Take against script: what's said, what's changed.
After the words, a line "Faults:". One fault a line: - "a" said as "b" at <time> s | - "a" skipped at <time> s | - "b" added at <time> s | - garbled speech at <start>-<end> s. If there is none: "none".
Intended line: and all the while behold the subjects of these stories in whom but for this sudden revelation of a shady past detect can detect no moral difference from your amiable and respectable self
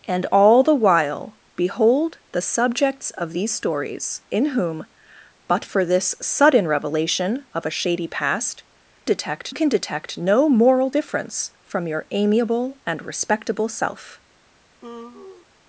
and all the while behold the subjects of these stories in whom but for this sudden revelation of a shady past detect can detect no moral difference from your amiable and respectable self
Faults:
none